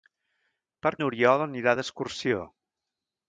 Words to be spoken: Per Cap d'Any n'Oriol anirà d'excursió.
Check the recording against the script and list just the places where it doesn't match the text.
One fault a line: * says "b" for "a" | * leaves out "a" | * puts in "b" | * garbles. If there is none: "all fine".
* leaves out "Cap d'Any"